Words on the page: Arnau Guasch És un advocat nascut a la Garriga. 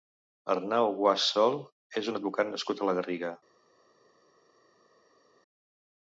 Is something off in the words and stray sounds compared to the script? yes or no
yes